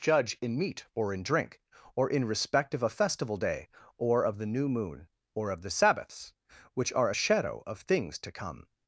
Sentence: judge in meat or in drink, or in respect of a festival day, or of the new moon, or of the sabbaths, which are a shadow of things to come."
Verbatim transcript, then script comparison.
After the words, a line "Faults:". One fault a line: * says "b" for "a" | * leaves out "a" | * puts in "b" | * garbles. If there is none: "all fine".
judge in meat or in drink, or in respect of a festival day, or of the new moon, or of the sabbaths, which are a shadow of things to come."
Faults:
all fine